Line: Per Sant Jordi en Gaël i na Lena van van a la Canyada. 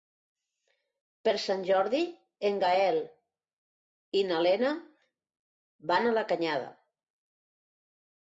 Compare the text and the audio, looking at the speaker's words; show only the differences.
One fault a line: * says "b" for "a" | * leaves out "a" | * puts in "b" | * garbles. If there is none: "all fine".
* leaves out "van"